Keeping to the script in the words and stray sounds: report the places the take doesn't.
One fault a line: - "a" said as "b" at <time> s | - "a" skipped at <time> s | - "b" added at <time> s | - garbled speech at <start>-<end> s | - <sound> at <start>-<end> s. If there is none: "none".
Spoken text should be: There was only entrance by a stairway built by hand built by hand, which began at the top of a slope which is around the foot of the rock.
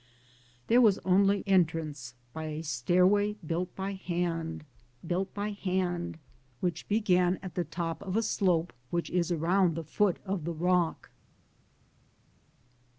none